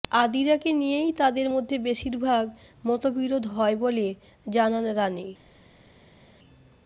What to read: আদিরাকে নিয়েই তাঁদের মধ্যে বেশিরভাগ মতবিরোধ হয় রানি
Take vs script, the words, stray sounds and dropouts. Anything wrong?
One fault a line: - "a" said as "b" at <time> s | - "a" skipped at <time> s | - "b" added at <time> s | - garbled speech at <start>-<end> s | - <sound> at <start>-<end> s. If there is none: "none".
- "বলে জানান" added at 3.8 s